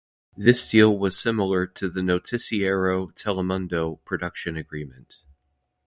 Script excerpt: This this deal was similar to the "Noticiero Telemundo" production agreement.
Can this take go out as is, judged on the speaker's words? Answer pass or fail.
fail